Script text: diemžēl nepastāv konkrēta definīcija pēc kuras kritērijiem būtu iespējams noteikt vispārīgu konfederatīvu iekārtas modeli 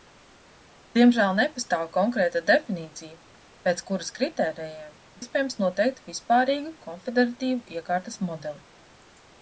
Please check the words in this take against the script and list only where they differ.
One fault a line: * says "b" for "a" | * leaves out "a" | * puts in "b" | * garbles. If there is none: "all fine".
* leaves out "būtu"